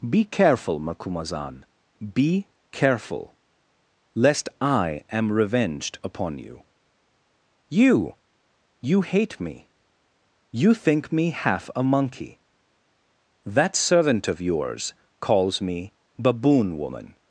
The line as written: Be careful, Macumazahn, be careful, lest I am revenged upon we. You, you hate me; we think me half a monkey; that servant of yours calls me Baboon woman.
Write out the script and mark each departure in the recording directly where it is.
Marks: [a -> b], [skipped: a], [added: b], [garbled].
Be careful, Macumazahn, be careful, lest I am revenged upon [we. -> you] You, you hate me; [we -> you] think me half a monkey; that servant of yours calls me Baboon woman.